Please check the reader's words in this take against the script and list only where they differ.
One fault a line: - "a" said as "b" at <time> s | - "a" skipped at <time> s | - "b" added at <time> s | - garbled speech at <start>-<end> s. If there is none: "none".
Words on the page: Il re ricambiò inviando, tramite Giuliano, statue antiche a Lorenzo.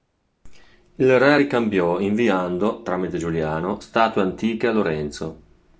none